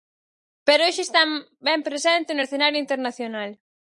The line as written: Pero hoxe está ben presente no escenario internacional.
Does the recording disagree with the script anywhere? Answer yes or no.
no